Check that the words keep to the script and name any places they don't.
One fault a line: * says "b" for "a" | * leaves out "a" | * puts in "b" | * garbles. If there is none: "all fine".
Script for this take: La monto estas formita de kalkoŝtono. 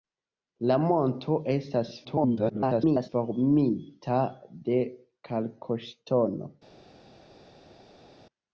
* garbles